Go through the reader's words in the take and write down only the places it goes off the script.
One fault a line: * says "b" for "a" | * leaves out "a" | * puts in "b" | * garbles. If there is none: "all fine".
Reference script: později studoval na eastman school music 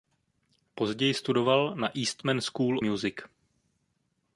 all fine